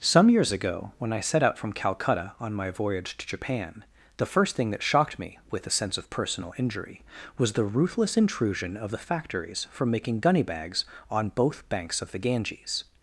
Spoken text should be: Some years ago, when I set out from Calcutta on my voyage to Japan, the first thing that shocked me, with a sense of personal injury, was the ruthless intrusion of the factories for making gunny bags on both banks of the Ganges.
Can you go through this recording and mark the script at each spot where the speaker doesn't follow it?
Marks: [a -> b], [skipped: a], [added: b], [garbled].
Some years ago, when I set out from Calcutta on my voyage to Japan, the first thing that shocked me, with a sense of personal injury, was the ruthless intrusion of the factories for making gunny bags on both banks of the Ganges.